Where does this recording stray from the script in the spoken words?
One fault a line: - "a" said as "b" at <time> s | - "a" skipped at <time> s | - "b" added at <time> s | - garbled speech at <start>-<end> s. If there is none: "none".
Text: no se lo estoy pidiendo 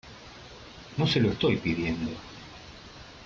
none